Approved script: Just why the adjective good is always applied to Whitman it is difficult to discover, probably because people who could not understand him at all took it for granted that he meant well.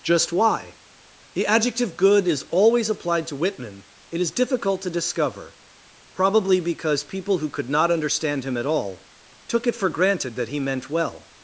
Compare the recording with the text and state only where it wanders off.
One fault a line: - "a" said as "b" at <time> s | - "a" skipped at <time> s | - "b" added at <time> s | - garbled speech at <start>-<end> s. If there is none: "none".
none